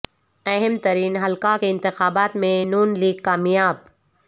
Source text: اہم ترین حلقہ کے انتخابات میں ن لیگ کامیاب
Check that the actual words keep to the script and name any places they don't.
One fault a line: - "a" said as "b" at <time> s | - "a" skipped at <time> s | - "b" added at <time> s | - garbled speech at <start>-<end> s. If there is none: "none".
none